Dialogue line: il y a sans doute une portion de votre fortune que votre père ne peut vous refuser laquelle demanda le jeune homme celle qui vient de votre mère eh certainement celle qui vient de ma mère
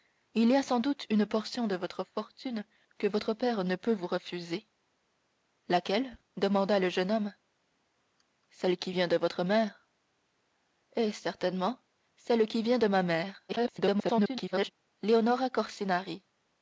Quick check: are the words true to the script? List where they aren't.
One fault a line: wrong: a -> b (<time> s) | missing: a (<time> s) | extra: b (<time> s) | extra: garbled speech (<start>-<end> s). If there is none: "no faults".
extra: garbled speech (13.5-14.7 s)